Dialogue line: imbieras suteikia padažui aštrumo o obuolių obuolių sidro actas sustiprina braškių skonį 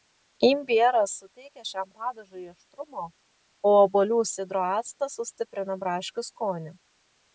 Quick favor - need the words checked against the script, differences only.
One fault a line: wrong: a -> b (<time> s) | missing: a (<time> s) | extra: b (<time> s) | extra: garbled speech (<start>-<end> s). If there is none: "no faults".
extra: šiam (1.7 s)
missing: obuolių (4.2 s)